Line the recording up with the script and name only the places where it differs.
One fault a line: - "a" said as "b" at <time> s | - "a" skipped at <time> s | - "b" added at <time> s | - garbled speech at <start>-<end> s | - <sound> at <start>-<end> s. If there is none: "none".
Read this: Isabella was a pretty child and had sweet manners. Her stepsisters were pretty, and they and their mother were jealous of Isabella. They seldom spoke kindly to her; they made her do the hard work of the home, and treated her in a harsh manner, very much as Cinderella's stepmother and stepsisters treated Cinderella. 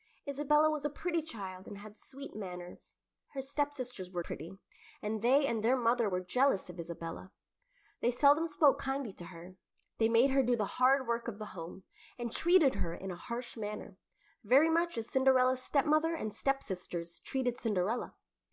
none